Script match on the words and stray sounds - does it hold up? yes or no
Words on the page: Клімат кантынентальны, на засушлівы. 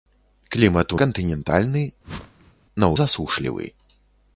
no